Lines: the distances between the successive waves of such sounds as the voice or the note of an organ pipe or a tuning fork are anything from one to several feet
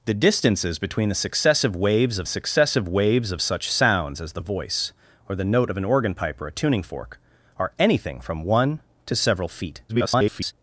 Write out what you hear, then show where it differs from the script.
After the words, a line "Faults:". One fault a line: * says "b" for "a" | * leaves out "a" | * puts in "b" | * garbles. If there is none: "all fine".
the distances between the successive waves of successive waves of such sounds as the voice or the note of an organ pipe or a tuning fork are anything from one to several feet [garbled]
Faults:
* puts in "successive waves of"
* garbles